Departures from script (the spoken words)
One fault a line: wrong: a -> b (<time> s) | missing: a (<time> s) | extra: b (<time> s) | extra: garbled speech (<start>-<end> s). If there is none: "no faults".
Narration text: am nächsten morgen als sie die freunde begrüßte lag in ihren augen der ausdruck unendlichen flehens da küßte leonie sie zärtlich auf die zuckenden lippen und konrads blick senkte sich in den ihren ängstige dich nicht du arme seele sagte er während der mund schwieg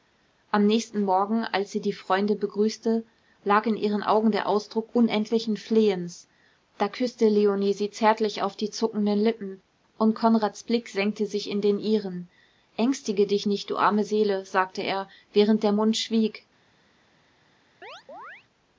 no faults